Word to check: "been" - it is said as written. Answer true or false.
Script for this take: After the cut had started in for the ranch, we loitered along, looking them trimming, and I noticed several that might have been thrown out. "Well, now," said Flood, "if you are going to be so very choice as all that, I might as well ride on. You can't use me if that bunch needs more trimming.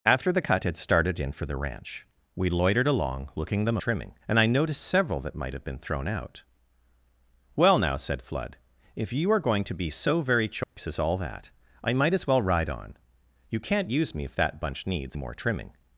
true